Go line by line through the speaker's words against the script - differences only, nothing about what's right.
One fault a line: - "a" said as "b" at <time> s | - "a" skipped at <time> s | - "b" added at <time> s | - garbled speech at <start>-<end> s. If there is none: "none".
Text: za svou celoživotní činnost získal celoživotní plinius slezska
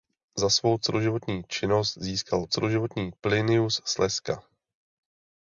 none